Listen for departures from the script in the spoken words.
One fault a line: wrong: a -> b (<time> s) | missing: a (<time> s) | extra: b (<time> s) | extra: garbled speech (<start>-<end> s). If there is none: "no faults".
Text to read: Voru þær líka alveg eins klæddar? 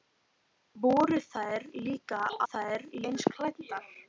wrong: alveg -> þær (2.4 s)